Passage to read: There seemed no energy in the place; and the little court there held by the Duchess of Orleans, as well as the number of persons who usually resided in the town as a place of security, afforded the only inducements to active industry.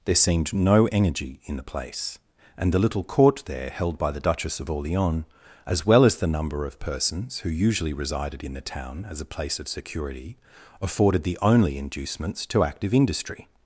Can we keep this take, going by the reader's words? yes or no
yes